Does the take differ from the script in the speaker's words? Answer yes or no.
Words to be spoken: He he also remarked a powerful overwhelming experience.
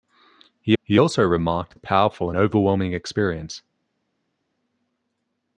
no